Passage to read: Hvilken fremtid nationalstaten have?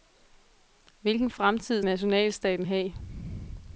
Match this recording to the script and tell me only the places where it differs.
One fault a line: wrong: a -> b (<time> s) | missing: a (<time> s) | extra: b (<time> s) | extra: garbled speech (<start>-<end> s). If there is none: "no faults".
no faults